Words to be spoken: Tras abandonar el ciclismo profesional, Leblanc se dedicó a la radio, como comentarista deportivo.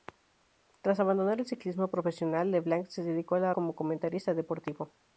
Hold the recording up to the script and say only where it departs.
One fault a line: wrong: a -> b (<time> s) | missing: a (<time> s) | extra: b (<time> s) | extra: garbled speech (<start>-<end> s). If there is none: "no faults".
missing: radio (3.5 s)